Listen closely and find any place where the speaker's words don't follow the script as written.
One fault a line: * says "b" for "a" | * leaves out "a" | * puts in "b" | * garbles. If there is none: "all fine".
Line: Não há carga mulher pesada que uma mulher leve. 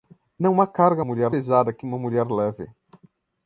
all fine